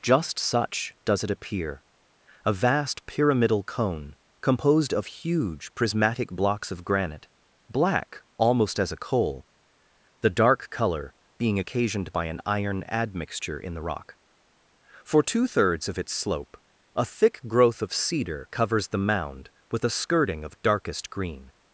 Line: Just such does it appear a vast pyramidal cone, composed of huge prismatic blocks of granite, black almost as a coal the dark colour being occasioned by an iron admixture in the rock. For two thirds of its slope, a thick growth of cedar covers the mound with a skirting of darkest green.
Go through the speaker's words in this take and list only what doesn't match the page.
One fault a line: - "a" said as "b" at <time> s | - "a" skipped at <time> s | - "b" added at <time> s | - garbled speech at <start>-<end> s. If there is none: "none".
none